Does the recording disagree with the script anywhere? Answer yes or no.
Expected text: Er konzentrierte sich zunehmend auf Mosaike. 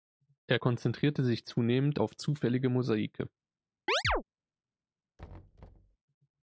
yes